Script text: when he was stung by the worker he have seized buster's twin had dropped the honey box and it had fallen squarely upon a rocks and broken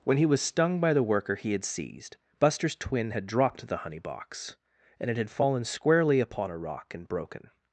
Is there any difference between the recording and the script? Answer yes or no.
yes